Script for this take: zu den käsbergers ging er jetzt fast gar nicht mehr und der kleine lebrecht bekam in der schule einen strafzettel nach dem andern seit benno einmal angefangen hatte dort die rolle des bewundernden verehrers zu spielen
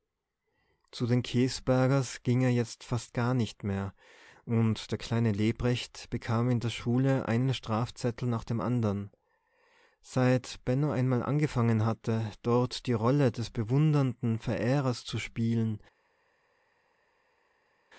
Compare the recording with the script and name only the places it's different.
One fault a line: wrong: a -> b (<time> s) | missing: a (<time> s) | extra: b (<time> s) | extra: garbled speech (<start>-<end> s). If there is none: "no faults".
no faults